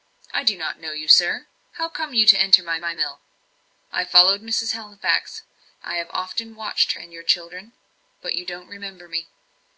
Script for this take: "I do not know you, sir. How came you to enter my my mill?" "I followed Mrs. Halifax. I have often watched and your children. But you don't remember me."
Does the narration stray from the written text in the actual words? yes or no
no